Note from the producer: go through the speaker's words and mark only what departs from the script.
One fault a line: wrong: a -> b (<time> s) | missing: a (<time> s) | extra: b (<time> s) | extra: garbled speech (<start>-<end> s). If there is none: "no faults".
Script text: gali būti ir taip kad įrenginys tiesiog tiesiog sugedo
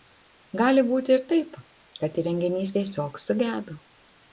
missing: tiesiog (3.3 s)